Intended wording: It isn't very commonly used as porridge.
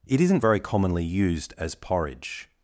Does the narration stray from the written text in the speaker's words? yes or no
no